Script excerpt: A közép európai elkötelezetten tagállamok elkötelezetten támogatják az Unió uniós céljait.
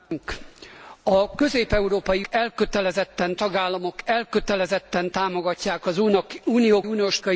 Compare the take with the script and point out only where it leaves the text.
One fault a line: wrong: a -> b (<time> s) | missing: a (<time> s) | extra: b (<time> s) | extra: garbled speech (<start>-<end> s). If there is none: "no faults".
no faults